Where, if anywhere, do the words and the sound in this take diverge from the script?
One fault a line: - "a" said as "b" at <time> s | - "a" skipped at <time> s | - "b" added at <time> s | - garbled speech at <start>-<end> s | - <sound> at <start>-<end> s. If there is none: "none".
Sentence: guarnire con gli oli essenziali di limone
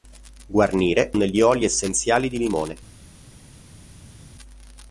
- "con" skipped at 1.1 s